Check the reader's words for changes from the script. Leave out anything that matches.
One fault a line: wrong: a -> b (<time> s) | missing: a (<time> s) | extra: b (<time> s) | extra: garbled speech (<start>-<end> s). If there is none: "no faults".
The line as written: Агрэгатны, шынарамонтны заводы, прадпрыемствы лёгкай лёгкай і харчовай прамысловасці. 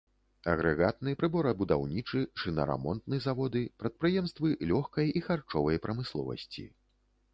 extra: прыборабудаўнічы (1.2 s)
missing: лёгкай (5.1 s)